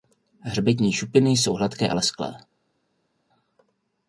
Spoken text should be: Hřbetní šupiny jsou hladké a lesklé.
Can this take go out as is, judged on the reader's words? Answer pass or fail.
pass